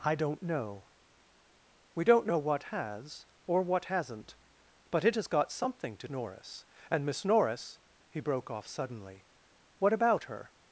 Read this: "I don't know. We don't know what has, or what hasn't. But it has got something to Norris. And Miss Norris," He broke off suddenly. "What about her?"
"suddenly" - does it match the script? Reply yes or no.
yes